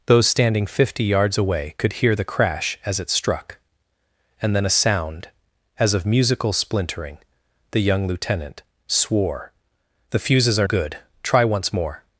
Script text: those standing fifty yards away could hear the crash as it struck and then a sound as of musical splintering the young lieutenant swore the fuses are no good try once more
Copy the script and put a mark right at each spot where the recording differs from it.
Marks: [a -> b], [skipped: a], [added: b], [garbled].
those standing fifty yards away could hear the crash as it struck and then a sound as of musical splintering the young lieutenant swore the fuses are [skipped: no] good try once more